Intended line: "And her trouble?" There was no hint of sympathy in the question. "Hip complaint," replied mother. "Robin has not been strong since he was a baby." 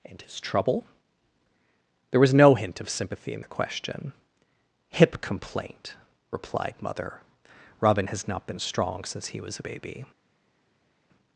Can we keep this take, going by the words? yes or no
no